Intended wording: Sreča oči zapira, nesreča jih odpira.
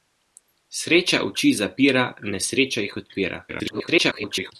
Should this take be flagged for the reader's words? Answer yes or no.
yes